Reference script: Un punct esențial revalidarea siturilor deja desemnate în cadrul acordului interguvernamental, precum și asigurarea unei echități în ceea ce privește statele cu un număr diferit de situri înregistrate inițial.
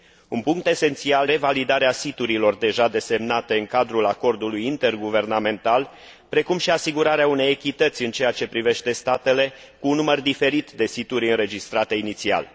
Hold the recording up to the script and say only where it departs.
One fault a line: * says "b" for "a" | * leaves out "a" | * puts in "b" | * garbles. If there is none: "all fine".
all fine